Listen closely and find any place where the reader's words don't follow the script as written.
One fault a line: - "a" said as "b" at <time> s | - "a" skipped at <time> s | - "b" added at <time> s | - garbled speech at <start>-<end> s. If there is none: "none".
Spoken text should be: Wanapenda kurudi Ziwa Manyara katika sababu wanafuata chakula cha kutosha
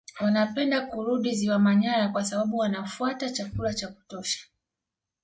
- "katika" said as "kwa" at 2.1 s